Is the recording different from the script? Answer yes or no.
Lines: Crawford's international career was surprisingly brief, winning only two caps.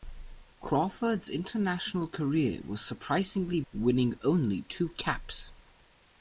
yes